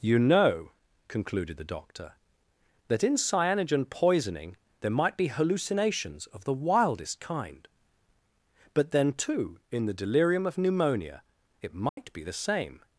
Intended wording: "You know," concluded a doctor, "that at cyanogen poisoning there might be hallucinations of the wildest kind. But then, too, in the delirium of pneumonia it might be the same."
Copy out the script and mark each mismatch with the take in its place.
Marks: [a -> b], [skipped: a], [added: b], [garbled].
"You know," concluded [a -> the] doctor, "that [at -> in] cyanogen poisoning there might be hallucinations of the wildest kind. But then, too, in the delirium of pneumonia it might be the same."